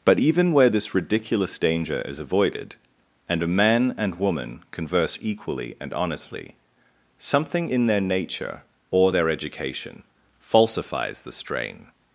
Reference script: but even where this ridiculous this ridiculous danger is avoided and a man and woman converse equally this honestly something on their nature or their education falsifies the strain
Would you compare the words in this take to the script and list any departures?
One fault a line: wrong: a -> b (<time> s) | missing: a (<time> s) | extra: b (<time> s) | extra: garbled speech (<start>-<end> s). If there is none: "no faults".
missing: this ridiculous (1.6 s)
wrong: this -> and (5.8 s)
wrong: on -> in (7.7 s)